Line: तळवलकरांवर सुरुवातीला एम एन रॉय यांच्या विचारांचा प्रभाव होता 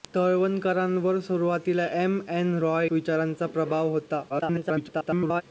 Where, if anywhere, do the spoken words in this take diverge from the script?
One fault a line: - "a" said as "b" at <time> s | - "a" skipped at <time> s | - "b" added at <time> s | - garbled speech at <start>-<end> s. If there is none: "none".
- "यांच्या" skipped at 2.9 s
- garbled speech at 4.3-5.4 s